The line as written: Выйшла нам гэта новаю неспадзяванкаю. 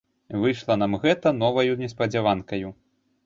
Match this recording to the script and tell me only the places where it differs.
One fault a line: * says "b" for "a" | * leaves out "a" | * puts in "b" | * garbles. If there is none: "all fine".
all fine